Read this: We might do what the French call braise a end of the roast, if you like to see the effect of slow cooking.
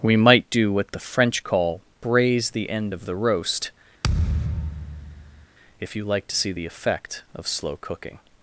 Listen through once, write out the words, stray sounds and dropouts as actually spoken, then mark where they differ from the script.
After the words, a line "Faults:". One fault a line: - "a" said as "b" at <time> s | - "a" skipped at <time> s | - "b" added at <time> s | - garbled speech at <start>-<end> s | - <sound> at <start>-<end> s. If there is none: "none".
We might do what the French call braise the end of the roast, if you like to see the effect of slow cooking.
Faults:
- "a" said as "the" at 2.5 s
- thud at 4.0-5.5 s